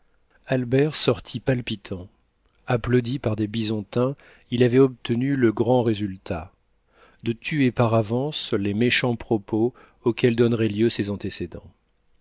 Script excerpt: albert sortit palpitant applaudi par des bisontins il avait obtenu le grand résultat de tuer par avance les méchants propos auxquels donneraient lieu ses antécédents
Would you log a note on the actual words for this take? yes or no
no